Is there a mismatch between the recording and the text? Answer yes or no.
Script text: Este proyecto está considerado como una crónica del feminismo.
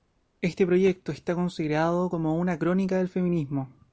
no